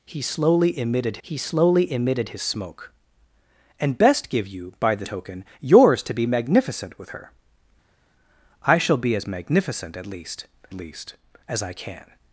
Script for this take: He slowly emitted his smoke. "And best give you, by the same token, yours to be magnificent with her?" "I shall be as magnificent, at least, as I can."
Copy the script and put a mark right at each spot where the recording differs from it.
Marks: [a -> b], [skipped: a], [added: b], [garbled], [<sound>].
He slowly emitted [added: he slowly emitted] his smoke. "And best give you, by the [skipped: same] token, yours to be magnificent with her?" "I shall be as magnificent, at least, [added: least] as I can."